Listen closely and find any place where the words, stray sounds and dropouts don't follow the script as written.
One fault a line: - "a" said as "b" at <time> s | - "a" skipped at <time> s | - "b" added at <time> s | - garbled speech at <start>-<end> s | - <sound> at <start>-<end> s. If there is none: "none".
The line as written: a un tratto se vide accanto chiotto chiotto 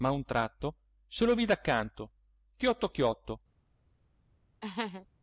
- "lo" added at 1.2 s
- laugh at 4.6-5.1 s